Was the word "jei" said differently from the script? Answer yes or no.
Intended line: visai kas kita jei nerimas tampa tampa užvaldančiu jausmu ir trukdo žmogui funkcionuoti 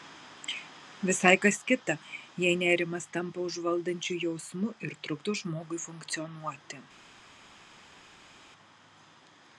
no